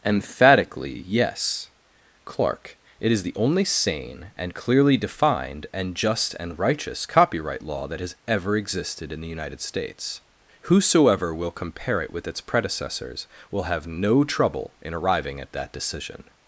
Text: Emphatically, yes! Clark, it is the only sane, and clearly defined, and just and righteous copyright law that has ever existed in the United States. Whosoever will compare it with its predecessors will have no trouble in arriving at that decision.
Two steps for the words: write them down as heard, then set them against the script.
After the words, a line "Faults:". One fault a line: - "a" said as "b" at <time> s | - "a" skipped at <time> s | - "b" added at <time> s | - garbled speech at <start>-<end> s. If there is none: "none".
Emphatically, yes! Clark, it is the only sane, and clearly defined, and just and righteous copyright law that has ever existed in the United States. Whosoever will compare it with its predecessors will have no trouble in arriving at that decision.
Faults:
none